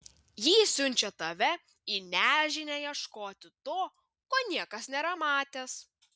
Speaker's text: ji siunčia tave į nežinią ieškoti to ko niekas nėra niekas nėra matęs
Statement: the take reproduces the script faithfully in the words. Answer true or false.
false